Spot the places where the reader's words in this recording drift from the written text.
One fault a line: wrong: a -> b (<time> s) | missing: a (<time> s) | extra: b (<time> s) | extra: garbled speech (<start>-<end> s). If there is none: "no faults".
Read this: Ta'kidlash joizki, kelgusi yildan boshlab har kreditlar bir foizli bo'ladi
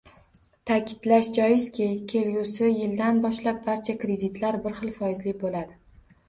wrong: har -> barcha (3.7 s)
extra: xil (4.8 s)